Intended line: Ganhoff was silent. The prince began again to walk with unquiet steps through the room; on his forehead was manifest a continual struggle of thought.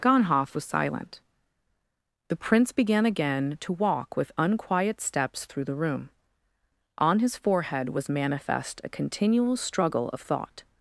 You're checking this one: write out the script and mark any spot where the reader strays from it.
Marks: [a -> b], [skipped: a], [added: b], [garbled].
Ganhoff was silent. The prince began again to walk with unquiet steps through the room; on his forehead was manifest a continual struggle of thought.